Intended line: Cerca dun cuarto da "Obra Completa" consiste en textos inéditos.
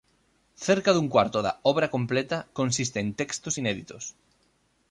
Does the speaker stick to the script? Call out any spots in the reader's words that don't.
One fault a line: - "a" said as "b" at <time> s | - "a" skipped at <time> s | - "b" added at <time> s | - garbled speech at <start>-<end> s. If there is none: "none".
none